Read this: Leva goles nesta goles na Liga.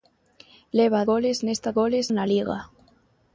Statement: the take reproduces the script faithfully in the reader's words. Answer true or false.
true